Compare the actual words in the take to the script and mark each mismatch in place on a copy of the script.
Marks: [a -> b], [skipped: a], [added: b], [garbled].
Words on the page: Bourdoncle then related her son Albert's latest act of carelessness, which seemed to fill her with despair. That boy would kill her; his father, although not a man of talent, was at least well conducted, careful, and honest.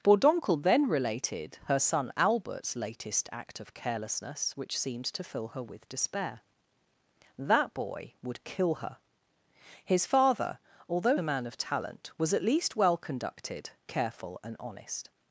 Bourdoncle then related her son Albert's latest act of carelessness, which seemed to fill her with despair. That boy would kill her; his father, although [skipped: not] a man of talent, was at least well conducted, careful, and honest.